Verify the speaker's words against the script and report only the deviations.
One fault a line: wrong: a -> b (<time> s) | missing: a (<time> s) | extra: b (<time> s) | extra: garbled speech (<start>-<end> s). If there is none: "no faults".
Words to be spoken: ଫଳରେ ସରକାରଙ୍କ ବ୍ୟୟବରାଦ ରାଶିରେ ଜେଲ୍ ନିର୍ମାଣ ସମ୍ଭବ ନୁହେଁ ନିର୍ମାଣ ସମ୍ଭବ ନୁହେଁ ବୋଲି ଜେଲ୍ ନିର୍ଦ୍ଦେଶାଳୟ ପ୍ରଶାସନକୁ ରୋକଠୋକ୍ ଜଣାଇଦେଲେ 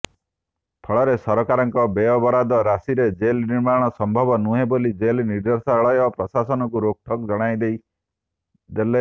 missing: ନିର୍ମାଣ ସମ୍ଭବ ନୁହେଁ (4.7 s)